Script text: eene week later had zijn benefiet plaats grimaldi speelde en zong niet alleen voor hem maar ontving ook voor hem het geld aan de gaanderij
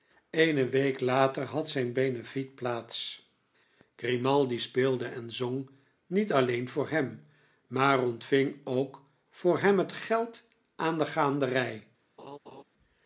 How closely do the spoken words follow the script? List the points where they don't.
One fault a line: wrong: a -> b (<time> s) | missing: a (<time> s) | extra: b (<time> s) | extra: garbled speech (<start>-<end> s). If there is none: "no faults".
no faults